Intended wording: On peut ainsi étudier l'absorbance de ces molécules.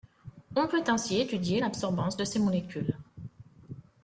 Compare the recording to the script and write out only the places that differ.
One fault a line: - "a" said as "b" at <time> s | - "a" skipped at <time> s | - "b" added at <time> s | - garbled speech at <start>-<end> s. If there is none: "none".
none